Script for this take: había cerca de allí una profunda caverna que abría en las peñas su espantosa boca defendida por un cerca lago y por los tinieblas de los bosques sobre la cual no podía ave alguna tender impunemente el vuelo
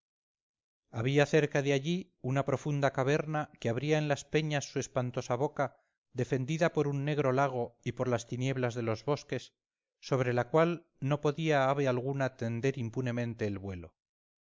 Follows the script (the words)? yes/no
no